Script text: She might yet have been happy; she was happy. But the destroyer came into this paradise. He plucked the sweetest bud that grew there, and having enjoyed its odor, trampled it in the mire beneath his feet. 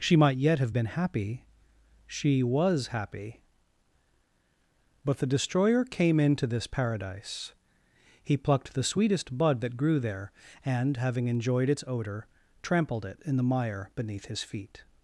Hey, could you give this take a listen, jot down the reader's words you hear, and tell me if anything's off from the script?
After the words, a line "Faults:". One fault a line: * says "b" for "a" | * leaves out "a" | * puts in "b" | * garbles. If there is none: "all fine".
She might yet have been happy; she was happy. But the destroyer came into this paradise. He plucked the sweetest bud that grew there, and having enjoyed its odor, trampled it in the mire beneath his feet.
Faults:
all fine